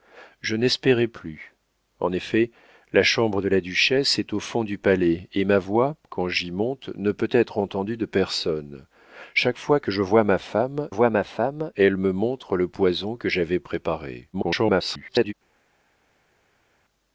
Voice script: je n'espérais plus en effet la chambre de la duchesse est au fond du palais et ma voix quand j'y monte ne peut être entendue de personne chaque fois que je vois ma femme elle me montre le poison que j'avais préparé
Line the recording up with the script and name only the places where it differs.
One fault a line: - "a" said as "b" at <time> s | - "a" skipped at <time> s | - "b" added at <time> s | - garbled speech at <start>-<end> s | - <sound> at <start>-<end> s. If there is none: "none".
- "vois ma femme" added at 10.9 s
- garbled speech at 14.3-15.3 s